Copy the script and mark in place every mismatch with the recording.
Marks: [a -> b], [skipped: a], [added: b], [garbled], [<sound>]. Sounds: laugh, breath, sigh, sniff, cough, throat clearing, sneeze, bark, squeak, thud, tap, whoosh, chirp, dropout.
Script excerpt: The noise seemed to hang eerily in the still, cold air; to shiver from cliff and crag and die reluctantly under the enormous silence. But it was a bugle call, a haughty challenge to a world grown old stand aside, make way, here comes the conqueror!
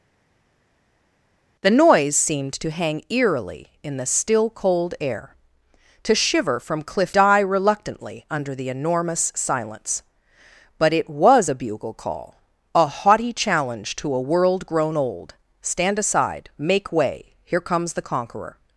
The noise seemed to hang eerily in the still, cold air; to shiver from cliff [skipped: and crag and] die reluctantly under the enormous silence. But it was a bugle call, a haughty challenge to a world grown old stand aside, make way, here comes the conqueror!